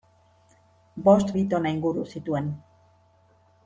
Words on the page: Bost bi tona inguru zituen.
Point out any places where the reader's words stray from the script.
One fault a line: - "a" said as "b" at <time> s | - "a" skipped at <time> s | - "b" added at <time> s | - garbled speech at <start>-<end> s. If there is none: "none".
none